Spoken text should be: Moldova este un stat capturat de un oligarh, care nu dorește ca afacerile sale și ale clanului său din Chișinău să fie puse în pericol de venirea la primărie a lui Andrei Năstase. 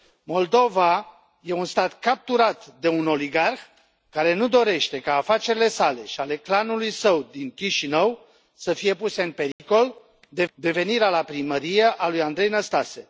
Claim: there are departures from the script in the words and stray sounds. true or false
true